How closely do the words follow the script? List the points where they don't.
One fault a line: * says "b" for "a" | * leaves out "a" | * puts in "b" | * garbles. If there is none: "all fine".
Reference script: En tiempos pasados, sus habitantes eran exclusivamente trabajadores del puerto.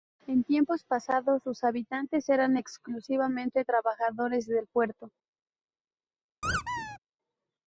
all fine